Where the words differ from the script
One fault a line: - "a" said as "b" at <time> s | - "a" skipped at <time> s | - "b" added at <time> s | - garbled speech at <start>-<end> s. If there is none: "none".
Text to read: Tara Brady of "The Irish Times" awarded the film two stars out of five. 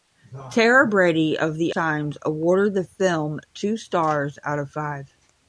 - "Irish" skipped at 1.8 s